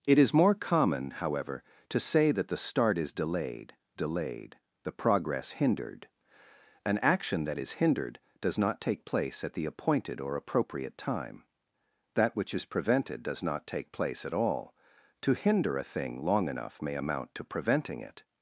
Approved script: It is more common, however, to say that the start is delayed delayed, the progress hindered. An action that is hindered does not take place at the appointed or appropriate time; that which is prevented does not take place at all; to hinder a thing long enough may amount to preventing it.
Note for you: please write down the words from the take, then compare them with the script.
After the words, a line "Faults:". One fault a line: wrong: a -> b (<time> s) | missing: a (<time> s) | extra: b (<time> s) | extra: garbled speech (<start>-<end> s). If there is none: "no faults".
It is more common, however, to say that the start is delayed delayed, the progress hindered. An action that is hindered does not take place at the appointed or appropriate time; that which is prevented does not take place at all; to hinder a thing long enough may amount to preventing it.
Faults:
no faults